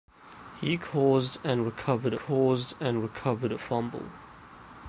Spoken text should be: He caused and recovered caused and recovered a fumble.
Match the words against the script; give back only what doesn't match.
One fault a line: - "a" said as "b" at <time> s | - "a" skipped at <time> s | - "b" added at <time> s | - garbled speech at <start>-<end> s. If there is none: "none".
none